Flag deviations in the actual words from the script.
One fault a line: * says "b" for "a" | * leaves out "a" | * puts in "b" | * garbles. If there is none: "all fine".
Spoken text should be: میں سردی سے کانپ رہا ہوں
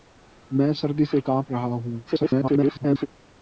* garbles